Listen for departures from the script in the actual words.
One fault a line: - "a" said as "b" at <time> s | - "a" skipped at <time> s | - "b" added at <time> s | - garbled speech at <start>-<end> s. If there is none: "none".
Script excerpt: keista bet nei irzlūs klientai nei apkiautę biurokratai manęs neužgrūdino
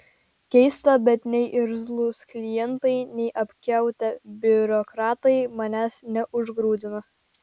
none